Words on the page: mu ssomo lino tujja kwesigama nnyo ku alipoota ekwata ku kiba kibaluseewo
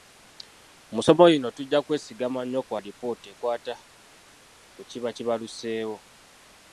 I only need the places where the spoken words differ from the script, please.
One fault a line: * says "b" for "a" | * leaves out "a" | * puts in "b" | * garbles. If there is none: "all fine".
all fine